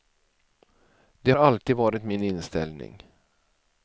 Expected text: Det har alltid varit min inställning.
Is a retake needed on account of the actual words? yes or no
yes